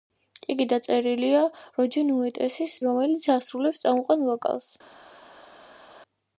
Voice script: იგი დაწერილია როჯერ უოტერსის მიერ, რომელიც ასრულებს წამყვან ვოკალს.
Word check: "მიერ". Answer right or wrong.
wrong